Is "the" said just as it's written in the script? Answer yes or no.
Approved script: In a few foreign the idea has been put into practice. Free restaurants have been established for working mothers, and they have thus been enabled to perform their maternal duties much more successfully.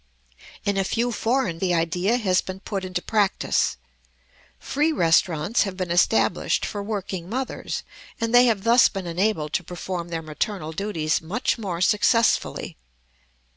yes